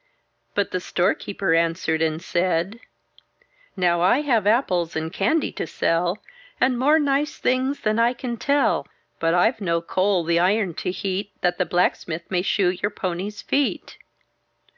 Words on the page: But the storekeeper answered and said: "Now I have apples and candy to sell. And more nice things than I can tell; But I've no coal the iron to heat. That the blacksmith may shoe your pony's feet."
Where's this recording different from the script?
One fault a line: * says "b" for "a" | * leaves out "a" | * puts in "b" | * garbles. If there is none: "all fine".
all fine